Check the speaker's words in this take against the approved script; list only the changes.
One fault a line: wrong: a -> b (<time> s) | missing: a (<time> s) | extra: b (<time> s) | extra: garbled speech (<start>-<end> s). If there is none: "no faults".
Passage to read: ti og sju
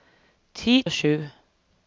no faults